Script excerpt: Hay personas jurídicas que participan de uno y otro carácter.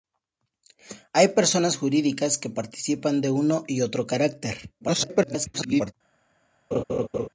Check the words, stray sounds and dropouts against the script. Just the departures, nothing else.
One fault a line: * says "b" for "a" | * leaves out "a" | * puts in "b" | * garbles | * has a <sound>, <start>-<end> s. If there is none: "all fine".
* garbles
* has a laugh, 6.7-7.3 s